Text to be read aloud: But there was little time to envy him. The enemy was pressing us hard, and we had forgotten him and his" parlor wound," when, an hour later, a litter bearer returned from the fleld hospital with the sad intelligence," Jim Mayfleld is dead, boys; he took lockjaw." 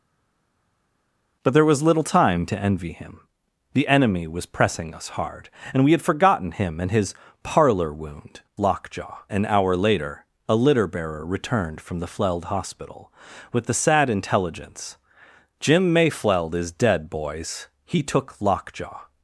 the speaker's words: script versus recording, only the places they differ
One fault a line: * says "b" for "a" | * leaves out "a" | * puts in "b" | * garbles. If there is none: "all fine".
* says "lockjaw" for "when"